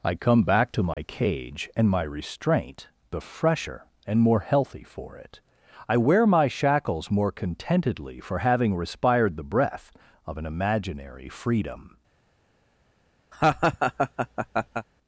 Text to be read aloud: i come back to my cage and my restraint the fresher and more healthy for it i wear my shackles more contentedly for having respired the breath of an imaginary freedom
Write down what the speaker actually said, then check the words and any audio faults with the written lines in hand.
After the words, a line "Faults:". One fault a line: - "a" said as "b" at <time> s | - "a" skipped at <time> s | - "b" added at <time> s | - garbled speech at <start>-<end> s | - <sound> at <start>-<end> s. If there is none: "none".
i come back to my cage and my restraint the fresher and more healthy for it i wear my shackles more contentedly for having respired the breath of an imaginary freedom
Faults:
- dropout at 0.9-1.0 s
- laugh at 13.3-14.9 s